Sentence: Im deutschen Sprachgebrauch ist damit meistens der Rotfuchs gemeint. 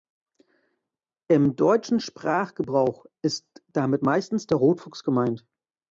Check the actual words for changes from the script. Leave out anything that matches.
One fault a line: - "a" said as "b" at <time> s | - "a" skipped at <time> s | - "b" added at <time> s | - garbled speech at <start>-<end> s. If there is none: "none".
none